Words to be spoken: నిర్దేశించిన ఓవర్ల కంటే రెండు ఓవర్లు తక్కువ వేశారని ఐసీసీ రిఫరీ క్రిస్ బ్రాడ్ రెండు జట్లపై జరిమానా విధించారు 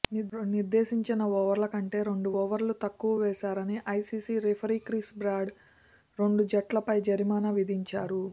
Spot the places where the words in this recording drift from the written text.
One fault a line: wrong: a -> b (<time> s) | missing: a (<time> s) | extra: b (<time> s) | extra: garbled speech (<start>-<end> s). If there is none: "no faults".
no faults